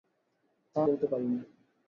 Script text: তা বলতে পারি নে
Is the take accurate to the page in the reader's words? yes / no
yes